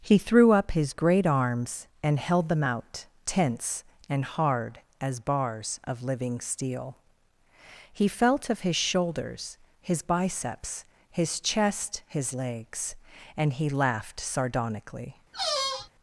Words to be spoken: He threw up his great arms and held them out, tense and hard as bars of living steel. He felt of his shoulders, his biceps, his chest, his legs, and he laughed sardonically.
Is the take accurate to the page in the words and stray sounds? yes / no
no